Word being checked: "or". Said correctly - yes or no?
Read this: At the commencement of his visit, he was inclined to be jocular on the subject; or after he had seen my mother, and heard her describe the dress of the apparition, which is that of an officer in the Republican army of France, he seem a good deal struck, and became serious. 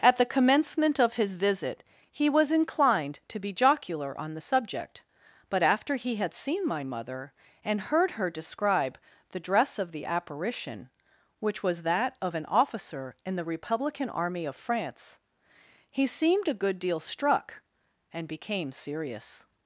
no